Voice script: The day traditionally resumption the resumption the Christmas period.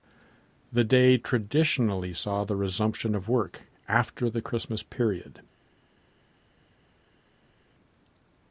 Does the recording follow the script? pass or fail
fail